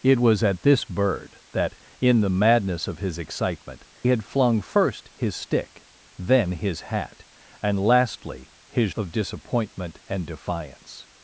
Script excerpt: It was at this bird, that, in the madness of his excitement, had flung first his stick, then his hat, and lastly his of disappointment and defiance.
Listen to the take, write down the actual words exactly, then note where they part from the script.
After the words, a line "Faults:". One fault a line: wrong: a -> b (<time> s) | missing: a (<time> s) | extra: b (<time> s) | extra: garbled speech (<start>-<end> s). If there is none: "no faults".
It was at this bird, that, in the madness of his excitement, had flung first his stick, then his hat, and lastly his of disappointment and defiance.
Faults:
no faults